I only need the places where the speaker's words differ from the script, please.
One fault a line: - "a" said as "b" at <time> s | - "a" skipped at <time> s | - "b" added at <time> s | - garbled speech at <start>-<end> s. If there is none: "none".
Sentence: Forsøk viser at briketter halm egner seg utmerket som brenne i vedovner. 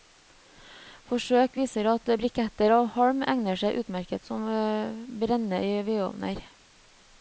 - "av" added at 2.8 s